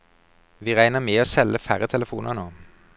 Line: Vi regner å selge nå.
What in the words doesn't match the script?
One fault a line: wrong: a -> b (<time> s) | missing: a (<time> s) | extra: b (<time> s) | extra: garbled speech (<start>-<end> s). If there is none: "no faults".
extra: med (1.0 s)
extra: færre telefoner (1.6 s)